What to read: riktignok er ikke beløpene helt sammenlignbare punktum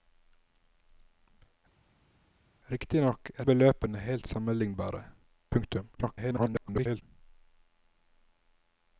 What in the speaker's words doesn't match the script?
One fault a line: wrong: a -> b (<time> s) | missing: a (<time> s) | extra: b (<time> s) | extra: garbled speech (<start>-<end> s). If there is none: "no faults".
missing: ikke (3.5 s)
extra: garbled speech (5.9-7.0 s)